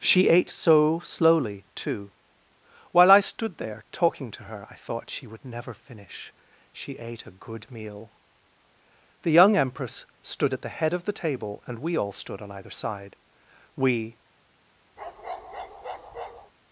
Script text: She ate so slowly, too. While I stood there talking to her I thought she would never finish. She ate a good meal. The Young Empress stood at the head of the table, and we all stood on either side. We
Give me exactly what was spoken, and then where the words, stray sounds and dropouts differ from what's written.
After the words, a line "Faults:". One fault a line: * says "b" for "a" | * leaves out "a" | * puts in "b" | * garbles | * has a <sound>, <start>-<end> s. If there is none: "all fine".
She ate so slowly, too. While I stood there talking to her I thought she would never finish. She ate a good meal. The Young Empress stood at the head of the table, and we all stood on either side. We
Faults:
* has a bark, 15.0-16.5 s